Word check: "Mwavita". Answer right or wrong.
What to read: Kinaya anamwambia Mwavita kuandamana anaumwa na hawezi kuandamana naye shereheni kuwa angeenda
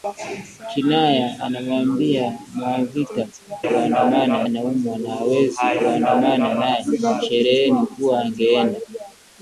right